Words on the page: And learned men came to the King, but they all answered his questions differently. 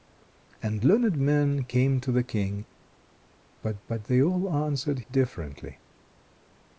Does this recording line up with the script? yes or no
no